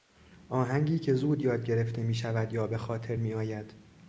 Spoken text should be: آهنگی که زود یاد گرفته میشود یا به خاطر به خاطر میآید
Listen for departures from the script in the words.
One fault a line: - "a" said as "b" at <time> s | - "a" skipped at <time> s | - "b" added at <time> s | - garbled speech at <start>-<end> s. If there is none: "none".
- "به خاطر" skipped at 3.1 s